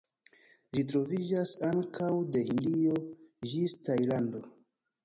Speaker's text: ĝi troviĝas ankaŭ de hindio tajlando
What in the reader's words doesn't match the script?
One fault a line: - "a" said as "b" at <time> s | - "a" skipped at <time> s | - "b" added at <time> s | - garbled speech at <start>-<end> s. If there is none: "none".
- "ĝis" added at 3.5 s